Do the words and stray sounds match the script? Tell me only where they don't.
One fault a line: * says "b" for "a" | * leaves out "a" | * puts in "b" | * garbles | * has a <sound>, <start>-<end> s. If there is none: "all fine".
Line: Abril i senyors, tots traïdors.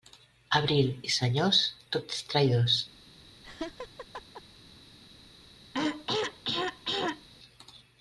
* has a laugh, 3.4-4.4 s
* has a throat clearing, 5.7-7.3 s